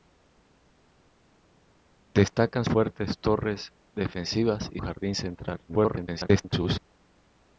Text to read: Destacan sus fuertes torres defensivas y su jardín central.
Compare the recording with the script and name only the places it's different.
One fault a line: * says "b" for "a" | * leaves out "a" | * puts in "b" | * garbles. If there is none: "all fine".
* leaves out "sus"
* leaves out "su"
* garbles